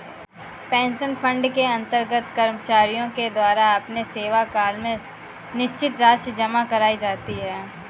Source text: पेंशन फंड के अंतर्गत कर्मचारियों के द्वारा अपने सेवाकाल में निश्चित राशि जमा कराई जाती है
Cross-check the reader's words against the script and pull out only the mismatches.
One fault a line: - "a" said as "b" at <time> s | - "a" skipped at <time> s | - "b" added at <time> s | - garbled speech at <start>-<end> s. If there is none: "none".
none